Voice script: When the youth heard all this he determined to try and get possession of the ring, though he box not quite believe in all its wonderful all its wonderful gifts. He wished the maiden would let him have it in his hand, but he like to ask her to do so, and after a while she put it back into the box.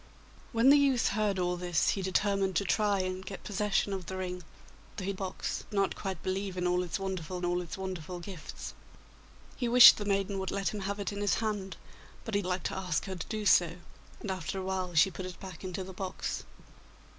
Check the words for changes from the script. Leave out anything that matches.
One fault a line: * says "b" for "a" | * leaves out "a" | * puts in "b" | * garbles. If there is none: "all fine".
all fine